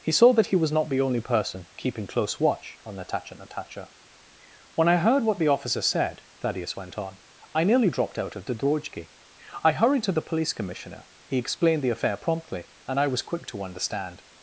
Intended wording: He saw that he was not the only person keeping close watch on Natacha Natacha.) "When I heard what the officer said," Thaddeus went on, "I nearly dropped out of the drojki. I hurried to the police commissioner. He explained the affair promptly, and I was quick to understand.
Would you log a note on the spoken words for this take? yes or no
no